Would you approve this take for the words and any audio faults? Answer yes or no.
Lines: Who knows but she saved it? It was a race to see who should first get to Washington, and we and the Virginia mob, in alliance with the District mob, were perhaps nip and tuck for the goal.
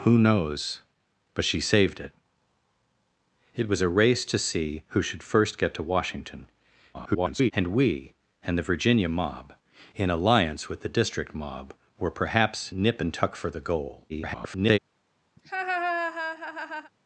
no